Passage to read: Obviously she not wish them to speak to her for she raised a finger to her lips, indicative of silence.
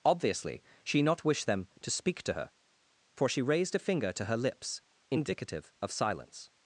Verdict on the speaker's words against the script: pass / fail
pass